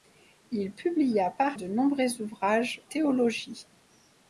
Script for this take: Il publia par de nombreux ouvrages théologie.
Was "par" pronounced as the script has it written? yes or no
yes